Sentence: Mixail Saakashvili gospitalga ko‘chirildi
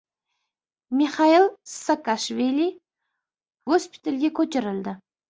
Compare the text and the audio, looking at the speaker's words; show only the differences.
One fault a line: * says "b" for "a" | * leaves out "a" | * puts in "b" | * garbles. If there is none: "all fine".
all fine